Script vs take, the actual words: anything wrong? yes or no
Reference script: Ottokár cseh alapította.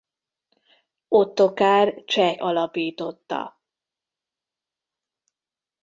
no